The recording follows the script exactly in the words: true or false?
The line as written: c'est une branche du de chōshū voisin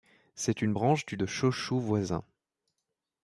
true